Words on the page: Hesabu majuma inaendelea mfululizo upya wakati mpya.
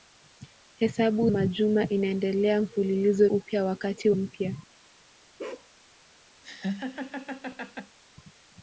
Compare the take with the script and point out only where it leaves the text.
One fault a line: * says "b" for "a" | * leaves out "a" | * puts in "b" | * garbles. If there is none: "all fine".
all fine